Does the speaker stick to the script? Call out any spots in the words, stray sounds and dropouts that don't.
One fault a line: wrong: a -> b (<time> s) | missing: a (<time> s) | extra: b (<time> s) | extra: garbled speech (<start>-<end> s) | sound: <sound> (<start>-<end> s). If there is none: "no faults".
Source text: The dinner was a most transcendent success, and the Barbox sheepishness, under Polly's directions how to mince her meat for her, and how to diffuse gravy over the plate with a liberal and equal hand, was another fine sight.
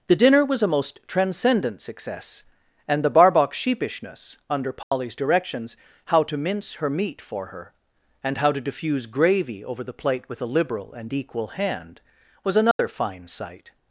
sound: dropout (4.8-4.9 s)
sound: dropout (12.7-12.8 s)